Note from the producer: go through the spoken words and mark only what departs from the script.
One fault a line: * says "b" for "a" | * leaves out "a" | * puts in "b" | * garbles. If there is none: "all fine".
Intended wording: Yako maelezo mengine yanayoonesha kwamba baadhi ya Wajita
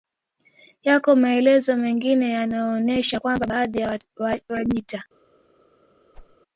all fine